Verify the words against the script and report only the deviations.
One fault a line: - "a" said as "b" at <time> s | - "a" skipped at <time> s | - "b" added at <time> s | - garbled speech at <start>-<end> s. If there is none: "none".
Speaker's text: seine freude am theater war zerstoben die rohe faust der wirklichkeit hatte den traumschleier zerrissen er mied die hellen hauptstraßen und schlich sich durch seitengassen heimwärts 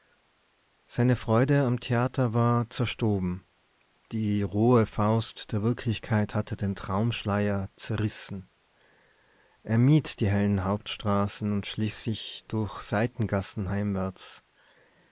none